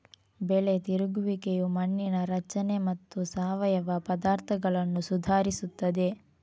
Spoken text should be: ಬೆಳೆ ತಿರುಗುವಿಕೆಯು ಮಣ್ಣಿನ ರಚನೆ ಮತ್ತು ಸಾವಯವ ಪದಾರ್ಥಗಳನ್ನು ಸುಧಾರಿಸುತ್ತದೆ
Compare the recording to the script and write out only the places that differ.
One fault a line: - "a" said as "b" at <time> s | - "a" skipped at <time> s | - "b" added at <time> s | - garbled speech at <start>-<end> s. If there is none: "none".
none